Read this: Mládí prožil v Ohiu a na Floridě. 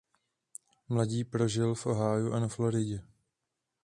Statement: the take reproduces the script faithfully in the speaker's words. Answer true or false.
true